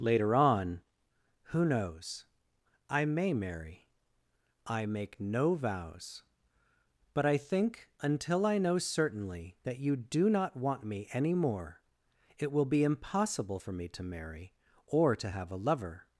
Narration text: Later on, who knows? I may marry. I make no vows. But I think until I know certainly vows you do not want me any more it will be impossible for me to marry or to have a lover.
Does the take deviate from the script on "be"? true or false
false